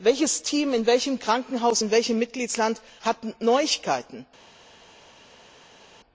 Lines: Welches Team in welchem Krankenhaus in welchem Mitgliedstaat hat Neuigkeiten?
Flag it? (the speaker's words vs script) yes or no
no